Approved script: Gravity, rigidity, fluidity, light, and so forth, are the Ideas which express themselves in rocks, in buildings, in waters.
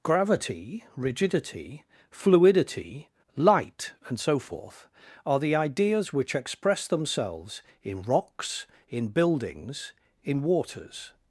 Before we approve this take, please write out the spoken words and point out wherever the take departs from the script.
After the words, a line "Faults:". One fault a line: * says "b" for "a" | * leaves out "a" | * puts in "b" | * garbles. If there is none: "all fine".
Gravity, rigidity, fluidity, light, and so forth, are the Ideas which express themselves in rocks, in buildings, in waters.
Faults:
all fine